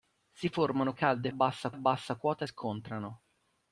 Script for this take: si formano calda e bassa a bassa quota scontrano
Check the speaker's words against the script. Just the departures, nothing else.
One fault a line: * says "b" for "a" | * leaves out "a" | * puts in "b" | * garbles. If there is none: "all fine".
all fine